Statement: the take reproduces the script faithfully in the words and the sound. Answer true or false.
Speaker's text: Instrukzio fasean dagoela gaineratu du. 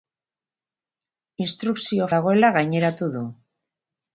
false